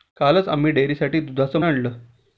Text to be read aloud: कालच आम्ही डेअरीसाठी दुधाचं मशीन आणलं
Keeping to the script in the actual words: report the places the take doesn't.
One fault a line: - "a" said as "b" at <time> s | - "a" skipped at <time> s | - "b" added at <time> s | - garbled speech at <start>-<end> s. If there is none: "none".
- "मशीन" skipped at 1.6 s